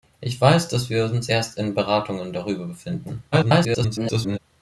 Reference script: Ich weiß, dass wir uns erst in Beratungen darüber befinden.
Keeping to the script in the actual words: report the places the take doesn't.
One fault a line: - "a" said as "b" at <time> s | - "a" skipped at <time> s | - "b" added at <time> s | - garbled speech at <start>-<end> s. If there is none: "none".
- garbled speech at 3.3-4.4 s